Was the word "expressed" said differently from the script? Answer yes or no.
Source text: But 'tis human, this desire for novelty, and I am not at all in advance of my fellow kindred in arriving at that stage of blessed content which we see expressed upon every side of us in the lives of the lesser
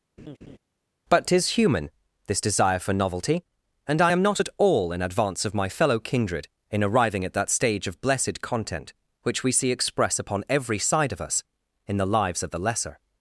yes